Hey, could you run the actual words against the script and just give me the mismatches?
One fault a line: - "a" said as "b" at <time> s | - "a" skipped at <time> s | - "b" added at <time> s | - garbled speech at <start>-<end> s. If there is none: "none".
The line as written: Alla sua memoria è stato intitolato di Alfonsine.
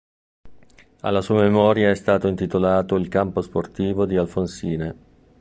- "il campo sportivo" added at 3.0 s